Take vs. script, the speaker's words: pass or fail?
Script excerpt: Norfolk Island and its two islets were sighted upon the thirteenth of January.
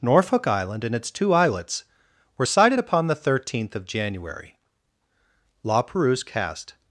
fail